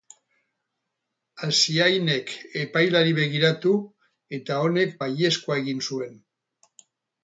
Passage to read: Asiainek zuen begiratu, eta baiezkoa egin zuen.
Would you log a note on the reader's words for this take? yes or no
yes